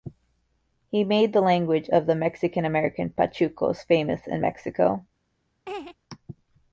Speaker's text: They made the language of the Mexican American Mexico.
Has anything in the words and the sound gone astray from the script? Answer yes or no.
yes